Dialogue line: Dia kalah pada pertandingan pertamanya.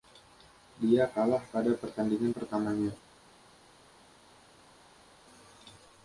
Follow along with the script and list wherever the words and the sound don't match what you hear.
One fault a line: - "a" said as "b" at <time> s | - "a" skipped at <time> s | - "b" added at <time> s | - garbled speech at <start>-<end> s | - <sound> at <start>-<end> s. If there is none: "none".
none